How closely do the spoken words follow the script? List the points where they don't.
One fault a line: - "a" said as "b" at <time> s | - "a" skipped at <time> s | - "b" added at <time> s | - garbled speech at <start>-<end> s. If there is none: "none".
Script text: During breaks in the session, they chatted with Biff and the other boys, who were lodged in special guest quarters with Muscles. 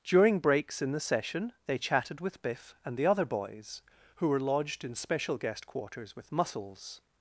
none